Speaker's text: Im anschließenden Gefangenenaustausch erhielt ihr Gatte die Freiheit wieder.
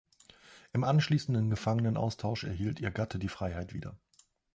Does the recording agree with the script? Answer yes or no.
yes